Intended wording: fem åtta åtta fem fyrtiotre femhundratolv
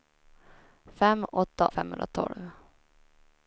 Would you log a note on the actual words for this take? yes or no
yes